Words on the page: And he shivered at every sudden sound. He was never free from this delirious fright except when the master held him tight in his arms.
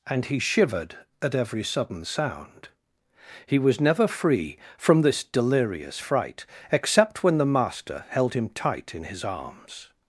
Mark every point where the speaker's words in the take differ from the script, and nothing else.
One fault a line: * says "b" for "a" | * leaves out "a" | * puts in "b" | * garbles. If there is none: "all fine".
all fine